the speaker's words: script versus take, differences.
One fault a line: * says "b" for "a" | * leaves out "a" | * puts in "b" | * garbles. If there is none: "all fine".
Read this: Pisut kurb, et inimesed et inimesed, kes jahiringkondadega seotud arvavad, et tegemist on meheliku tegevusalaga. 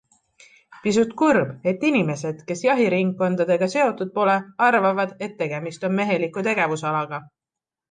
* leaves out "et inimesed"
* puts in "pole"